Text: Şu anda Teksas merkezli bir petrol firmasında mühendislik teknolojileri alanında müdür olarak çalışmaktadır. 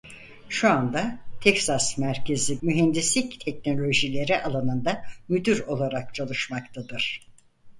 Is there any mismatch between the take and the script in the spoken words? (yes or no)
yes